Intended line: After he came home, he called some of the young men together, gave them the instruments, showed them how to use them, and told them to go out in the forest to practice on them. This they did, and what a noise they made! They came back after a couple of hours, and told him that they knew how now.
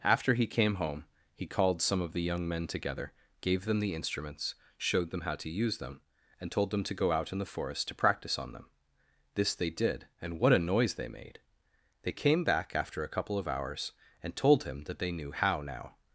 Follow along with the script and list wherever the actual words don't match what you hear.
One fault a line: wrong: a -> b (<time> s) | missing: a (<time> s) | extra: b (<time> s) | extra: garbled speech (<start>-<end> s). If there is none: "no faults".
no faults